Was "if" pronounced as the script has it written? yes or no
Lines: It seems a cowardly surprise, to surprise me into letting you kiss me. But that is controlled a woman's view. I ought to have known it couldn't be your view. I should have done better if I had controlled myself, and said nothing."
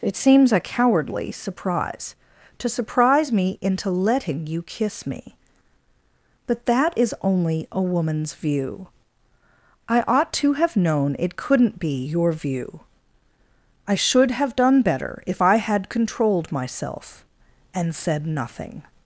yes